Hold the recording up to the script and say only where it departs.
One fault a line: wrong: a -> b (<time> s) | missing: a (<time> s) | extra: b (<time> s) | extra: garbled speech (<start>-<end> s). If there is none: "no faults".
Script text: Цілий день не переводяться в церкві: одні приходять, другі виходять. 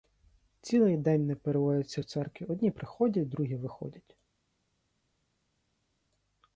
no faults